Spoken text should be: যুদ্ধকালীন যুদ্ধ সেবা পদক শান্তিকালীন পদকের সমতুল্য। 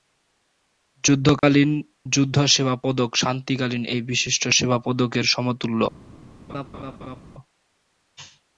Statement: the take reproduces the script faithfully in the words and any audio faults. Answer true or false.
false